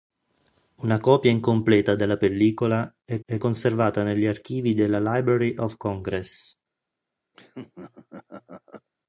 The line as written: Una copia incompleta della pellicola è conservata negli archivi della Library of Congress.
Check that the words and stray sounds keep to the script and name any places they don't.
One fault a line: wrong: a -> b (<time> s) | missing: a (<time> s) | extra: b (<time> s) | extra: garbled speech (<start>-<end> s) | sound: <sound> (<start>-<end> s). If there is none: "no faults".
extra: è (3.3 s)
sound: laugh (7.3-8.9 s)